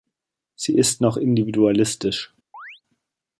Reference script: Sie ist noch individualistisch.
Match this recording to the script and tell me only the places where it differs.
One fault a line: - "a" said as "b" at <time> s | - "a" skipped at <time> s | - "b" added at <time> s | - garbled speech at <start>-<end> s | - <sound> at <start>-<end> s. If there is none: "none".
- chirp at 2.5-2.8 s